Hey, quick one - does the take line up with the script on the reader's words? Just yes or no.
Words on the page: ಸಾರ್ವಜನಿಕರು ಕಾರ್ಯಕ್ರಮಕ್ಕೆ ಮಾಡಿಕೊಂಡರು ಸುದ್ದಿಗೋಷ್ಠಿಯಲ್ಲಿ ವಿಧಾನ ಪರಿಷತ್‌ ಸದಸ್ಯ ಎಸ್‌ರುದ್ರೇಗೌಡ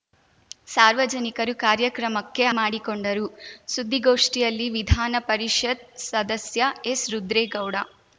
yes